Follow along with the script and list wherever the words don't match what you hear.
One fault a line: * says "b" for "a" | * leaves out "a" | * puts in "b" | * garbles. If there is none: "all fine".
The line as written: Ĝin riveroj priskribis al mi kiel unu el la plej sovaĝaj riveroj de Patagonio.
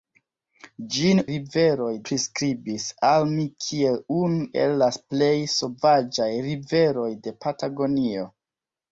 all fine